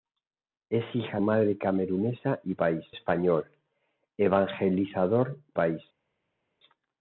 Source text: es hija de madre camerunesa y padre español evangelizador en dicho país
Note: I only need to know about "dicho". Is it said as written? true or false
false